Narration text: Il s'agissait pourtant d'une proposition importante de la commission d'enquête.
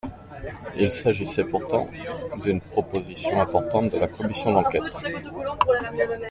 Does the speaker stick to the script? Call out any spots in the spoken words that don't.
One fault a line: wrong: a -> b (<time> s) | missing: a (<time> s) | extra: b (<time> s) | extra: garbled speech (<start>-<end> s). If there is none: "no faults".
no faults